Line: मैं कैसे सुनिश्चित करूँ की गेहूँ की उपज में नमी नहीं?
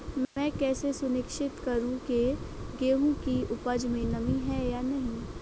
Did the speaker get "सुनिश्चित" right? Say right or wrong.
right